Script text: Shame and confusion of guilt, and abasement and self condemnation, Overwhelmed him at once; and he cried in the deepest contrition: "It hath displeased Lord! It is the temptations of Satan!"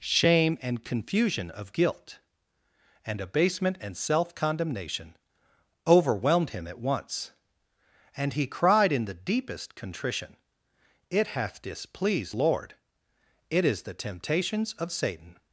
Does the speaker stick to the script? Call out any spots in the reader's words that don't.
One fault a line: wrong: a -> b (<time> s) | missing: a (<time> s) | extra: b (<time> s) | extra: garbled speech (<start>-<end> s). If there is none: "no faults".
no faults